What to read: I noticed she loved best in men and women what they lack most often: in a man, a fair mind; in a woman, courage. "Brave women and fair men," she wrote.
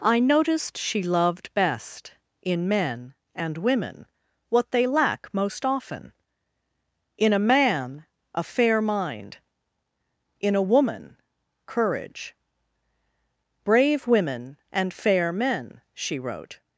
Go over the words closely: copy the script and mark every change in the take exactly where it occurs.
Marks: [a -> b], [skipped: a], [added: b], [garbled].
I noticed she loved best in men and women what they lack most often: in a man, a fair mind; in a woman, courage. "Brave women and fair men," she wrote.